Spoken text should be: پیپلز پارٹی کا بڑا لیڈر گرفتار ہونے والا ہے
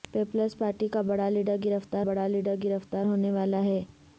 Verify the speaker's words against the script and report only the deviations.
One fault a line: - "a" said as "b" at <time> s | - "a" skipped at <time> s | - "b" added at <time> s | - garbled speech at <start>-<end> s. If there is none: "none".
- "بڑا لیڈر گرفتار" added at 2.0 s